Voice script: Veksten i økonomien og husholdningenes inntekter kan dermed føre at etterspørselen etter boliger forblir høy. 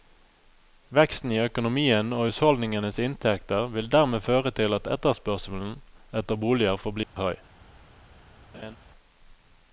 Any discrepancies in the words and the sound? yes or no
yes